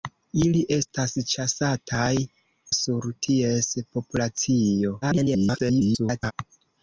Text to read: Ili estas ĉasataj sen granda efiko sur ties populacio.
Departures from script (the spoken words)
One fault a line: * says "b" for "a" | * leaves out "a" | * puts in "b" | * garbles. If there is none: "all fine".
* leaves out "sen granda efiko"
* garbles